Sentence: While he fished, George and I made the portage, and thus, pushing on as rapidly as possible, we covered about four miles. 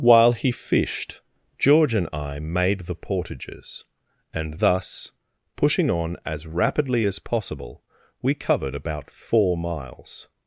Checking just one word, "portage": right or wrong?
wrong